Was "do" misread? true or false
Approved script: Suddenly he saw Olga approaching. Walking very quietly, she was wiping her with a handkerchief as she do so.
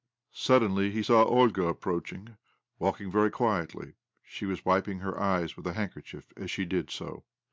true